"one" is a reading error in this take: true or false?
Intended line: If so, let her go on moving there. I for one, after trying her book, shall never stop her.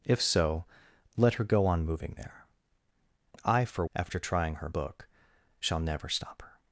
true